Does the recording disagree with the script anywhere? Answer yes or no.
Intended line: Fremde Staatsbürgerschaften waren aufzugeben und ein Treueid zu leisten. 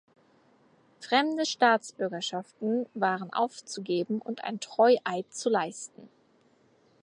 no